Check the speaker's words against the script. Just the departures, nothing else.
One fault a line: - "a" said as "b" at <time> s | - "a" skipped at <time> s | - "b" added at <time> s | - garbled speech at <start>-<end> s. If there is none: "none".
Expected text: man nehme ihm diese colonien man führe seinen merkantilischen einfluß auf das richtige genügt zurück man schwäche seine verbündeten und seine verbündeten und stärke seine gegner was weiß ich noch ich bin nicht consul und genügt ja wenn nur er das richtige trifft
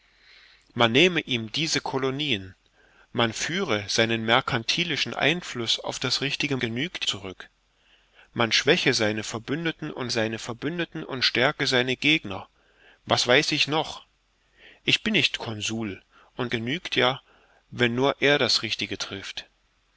none